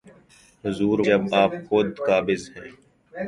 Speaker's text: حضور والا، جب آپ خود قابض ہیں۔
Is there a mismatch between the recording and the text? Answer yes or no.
yes